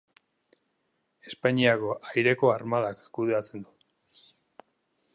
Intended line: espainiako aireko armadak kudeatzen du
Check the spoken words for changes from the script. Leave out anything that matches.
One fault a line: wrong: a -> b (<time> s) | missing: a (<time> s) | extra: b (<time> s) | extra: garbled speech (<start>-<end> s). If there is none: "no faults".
no faults